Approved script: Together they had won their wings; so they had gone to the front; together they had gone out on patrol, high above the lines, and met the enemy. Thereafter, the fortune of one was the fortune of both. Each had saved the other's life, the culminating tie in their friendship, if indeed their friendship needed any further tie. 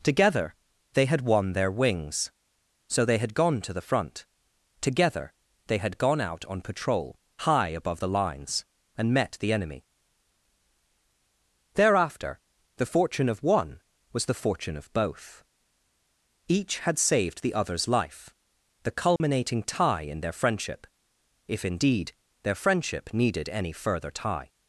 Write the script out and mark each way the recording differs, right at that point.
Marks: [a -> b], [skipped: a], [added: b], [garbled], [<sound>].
Together they had won their wings; so they had gone to the front; together they had gone out on patrol, high above the lines, and met the enemy. Thereafter, the fortune of one was the fortune of both. Each had saved the other's life, the culminating [dropout] tie in their friendship, if indeed their friendship needed any further tie.